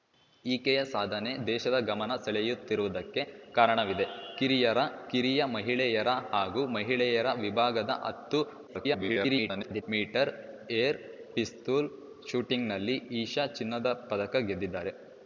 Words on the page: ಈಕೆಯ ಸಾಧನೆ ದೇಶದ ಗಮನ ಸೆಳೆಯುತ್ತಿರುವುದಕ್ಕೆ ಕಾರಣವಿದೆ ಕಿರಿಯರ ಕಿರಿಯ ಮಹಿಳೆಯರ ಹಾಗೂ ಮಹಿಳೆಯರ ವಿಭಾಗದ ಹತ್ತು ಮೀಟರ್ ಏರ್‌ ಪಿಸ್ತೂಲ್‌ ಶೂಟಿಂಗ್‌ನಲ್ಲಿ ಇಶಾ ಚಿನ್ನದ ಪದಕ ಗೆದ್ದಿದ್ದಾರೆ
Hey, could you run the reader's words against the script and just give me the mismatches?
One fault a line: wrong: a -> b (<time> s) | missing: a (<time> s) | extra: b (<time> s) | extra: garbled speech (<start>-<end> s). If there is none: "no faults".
extra: garbled speech (8.7-9.8 s)